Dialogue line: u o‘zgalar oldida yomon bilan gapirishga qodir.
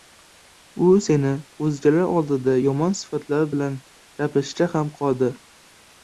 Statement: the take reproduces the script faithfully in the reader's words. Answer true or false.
false